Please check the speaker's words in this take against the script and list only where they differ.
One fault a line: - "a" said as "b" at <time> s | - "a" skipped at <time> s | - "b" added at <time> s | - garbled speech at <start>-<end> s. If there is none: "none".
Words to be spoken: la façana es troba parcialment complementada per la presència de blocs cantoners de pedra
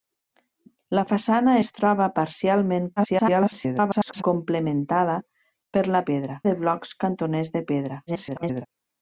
- garbled speech at 3.0-4.2 s
- "presència" said as "pedra" at 6.1 s
- garbled speech at 8.1-8.7 s